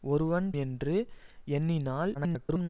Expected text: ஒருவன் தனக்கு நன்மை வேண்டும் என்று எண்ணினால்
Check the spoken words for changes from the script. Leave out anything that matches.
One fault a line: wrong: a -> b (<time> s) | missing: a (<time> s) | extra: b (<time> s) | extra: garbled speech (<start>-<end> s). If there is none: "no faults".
missing: தனக்கு நன்மை வேண்டும் (0.5 s)
extra: garbled speech (2.1-2.7 s)